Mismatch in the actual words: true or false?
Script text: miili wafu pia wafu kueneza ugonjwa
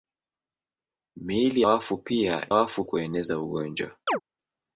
false